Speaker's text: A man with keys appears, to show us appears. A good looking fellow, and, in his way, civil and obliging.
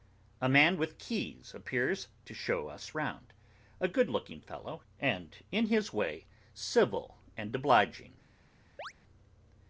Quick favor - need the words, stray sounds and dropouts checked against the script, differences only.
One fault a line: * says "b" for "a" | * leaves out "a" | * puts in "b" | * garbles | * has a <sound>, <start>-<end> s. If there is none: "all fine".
* says "round" for "appears"
* has a chirp, 8.8-8.9 s